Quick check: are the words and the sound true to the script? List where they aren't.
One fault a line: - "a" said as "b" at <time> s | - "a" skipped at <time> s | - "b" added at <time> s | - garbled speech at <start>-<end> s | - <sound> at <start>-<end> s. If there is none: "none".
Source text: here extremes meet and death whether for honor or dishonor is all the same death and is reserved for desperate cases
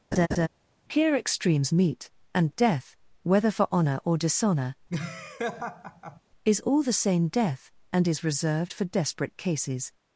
- laugh at 0.1-0.5 s
- laugh at 4.9-6.2 s